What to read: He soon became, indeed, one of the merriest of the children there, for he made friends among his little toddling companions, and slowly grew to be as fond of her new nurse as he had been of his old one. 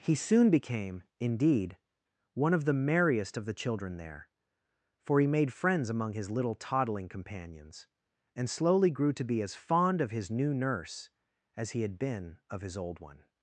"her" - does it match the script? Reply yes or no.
no